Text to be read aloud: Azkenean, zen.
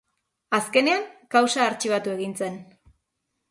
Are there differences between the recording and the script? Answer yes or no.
yes